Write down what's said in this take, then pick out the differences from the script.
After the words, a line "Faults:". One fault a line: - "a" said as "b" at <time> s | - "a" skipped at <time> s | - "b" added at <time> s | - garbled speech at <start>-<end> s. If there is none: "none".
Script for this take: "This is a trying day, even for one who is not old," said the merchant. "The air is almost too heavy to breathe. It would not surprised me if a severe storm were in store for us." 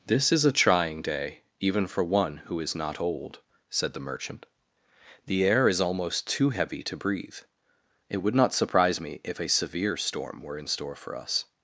"This is a trying day, even for one who is not old," said the merchant. "The air is almost too heavy to breathe. It would not surprise me if a severe storm were in store for us."
Faults:
- "surprised" said as "surprise" at 8.5 s